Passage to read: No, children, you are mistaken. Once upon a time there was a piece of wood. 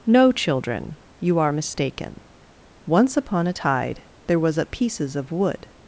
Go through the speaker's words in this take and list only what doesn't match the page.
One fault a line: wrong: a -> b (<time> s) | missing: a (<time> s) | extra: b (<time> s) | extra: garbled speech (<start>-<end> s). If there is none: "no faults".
wrong: time -> tide (3.5 s)
wrong: piece -> pieces (4.7 s)